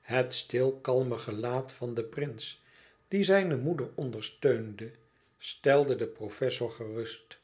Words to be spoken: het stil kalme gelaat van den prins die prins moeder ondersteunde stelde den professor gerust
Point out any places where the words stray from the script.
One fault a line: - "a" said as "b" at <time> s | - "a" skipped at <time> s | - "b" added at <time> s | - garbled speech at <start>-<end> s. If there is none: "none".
- "prins" said as "zijne" at 3.2 s